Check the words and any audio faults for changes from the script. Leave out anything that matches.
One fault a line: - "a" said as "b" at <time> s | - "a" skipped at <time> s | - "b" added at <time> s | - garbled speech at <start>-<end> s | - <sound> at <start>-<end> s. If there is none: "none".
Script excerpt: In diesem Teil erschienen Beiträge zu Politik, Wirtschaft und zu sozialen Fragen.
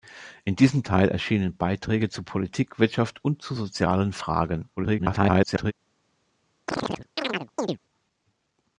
- garbled speech at 4.8-5.7 s
- chirp at 6.7-7.8 s